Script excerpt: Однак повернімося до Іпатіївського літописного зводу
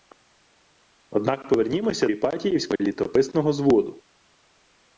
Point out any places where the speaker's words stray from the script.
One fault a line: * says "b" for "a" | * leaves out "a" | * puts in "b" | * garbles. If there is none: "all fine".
* leaves out "до"